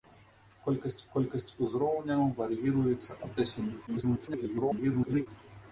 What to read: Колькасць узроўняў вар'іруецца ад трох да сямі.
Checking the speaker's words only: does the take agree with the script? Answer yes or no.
no